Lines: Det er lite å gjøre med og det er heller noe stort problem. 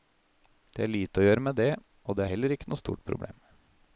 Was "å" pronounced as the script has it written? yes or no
yes